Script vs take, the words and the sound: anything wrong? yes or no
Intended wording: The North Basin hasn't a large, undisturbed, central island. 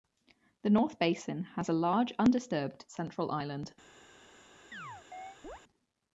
yes